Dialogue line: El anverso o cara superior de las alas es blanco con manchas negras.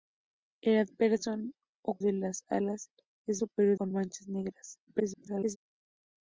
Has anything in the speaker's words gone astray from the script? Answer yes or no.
yes